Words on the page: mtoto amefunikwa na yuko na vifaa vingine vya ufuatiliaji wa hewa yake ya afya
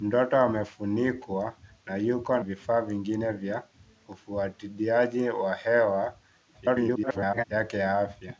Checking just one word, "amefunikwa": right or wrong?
right